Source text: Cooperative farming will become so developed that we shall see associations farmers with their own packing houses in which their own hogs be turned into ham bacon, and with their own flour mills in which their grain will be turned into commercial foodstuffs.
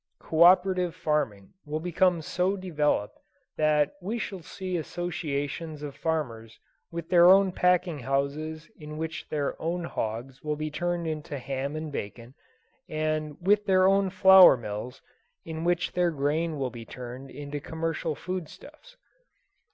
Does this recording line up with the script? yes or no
no